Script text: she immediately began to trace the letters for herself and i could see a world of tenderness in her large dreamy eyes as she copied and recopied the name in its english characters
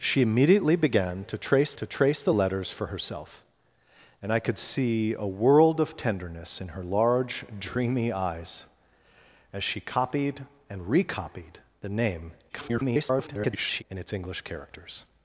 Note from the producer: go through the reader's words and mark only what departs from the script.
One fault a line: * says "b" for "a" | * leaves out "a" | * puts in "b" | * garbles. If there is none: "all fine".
* puts in "to trace"
* garbles